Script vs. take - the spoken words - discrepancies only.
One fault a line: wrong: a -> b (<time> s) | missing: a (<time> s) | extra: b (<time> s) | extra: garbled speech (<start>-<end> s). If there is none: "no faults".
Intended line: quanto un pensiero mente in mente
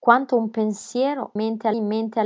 no faults